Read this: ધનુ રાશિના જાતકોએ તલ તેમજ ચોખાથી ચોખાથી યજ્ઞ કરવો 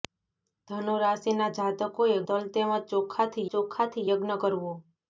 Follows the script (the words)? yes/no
yes